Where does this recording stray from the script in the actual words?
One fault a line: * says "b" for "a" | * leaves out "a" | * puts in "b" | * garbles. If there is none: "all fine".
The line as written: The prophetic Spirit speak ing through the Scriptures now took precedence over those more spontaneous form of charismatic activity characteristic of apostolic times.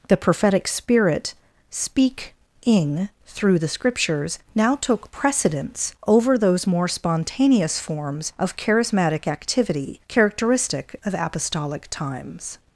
* says "forms" for "form"